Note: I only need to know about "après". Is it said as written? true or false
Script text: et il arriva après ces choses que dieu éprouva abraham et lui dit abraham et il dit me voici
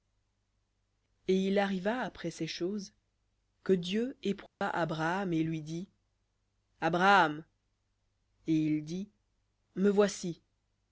true